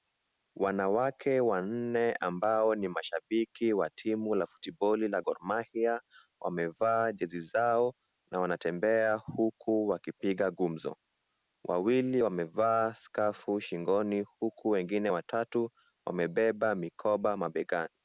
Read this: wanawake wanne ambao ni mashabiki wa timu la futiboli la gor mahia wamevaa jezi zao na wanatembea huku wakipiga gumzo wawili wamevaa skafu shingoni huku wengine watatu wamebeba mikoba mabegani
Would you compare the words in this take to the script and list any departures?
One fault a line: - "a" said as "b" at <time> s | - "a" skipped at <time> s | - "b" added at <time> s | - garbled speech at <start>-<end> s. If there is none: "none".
none